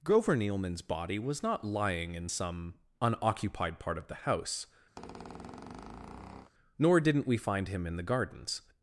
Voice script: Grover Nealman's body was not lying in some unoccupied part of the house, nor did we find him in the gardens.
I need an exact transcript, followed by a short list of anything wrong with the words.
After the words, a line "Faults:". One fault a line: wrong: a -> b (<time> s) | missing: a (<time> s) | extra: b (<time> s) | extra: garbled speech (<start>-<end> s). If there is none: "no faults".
Grover Nealman's body was not lying in some unoccupied part of the house, nor didn't we find him in the gardens.
Faults:
wrong: did -> didn't (7.0 s)